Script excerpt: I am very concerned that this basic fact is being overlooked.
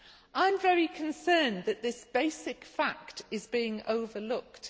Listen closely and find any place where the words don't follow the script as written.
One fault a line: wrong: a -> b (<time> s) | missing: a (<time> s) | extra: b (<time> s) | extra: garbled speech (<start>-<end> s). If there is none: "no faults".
no faults